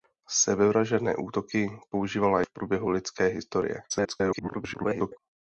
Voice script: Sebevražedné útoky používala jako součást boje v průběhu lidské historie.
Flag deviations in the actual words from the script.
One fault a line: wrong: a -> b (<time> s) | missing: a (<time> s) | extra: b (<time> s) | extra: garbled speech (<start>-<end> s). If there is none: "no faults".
missing: jako součást boje (2.4 s)
extra: garbled speech (3.9-5.2 s)